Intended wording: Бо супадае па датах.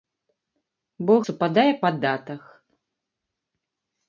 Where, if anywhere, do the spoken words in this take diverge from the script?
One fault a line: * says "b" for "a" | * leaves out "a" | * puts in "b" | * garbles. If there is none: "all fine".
all fine